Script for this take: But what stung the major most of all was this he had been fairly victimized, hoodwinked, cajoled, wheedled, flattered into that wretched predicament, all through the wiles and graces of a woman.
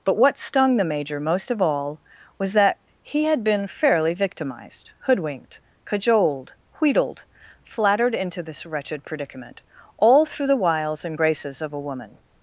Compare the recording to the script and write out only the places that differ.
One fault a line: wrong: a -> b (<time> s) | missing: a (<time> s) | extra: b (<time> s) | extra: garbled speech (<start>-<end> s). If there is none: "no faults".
wrong: this -> that (2.5 s)
wrong: that -> this (8.4 s)